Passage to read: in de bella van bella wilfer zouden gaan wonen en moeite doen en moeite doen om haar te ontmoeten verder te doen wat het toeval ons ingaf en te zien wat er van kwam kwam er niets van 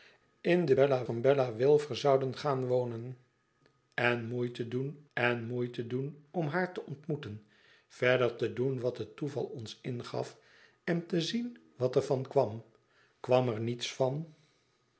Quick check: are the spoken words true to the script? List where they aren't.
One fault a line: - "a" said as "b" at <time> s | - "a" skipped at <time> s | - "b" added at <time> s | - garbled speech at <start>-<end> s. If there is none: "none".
none